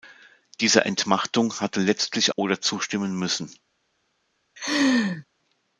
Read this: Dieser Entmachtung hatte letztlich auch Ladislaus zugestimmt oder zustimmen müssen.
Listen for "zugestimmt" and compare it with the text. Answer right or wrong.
wrong